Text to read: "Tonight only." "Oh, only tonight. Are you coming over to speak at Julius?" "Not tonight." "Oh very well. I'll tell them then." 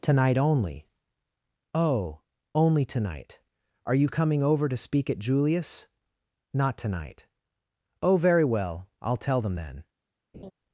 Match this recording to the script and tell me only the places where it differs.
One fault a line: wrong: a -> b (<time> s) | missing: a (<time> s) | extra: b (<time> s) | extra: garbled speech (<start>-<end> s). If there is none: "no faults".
no faults